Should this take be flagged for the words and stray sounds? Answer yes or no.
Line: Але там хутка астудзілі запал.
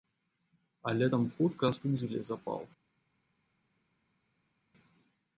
no